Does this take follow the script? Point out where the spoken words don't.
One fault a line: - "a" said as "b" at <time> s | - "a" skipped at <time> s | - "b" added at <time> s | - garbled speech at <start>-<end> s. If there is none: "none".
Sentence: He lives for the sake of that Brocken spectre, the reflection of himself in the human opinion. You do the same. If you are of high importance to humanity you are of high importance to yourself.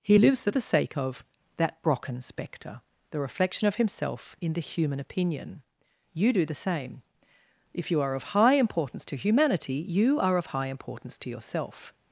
none